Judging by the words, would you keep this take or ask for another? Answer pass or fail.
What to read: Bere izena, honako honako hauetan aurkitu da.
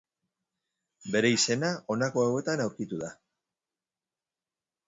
fail